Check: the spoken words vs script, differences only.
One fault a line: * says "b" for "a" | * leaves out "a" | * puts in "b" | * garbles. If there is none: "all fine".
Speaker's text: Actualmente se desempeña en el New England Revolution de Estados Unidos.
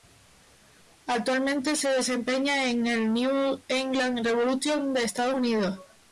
all fine